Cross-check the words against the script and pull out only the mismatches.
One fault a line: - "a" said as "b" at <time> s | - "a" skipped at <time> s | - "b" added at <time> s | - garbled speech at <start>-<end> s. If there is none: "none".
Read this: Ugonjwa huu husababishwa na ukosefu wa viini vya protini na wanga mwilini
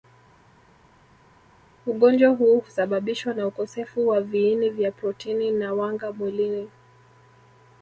none